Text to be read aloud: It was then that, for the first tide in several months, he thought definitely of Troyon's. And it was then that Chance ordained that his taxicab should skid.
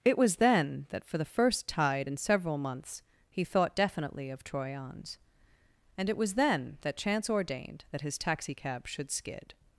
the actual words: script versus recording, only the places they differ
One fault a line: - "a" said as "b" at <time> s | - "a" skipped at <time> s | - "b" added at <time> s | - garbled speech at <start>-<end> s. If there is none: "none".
none